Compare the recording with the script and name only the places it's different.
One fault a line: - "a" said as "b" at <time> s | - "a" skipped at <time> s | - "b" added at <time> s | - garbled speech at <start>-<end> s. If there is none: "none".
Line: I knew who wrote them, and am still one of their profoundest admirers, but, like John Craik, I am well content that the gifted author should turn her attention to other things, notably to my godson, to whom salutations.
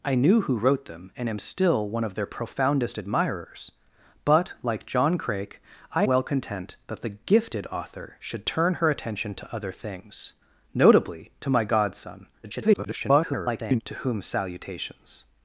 - "am" skipped at 6.0 s
- garbled speech at 12.4-13.8 s